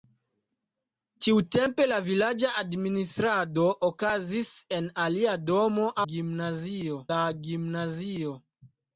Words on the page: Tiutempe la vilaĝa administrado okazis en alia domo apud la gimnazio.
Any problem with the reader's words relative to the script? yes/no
yes